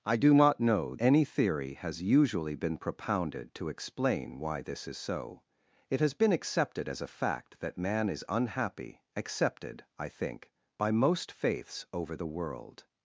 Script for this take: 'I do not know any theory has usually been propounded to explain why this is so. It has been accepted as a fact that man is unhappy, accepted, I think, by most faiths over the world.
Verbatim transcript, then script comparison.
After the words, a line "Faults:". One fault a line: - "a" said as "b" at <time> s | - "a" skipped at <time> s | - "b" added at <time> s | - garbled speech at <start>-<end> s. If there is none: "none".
'I do not know any theory has usually been propounded to explain why this is so. It has been accepted as a fact that man is unhappy, accepted, I think, by most faiths over the world.
Faults:
none